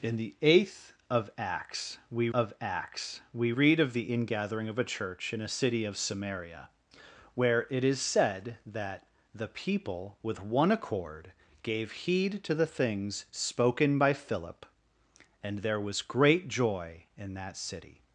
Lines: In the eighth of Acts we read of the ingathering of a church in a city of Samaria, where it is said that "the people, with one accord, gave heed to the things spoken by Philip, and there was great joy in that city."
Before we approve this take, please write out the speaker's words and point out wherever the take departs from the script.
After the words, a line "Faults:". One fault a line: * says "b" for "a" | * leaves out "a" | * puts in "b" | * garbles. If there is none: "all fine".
In the eighth of Acts we of Acts we read of the ingathering of a church in a city of Samaria, where it is said that "the people, with one accord, gave heed to the things spoken by Philip, and there was great joy in that city."
Faults:
* puts in "of Acts we"